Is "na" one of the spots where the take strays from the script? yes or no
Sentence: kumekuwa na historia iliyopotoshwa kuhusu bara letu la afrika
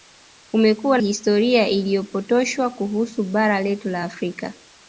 yes